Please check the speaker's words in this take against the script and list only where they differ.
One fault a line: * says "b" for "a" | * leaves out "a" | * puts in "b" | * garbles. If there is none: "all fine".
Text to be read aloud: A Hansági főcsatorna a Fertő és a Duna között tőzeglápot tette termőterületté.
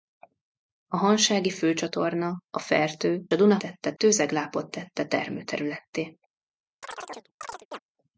* leaves out "és"
* says "tette" for "között"